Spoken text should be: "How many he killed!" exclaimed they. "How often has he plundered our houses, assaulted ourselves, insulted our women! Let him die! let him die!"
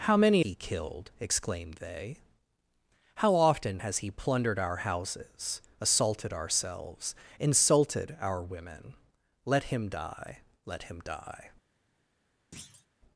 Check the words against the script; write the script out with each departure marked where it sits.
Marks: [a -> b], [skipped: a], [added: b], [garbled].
"How many he killed!" exclaimed they. "How often has he plundered our houses, assaulted ourselves, insulted our women! Let him die! let him die!"